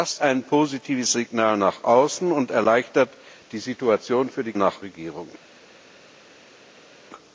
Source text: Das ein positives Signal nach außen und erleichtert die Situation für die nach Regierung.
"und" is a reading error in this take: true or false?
false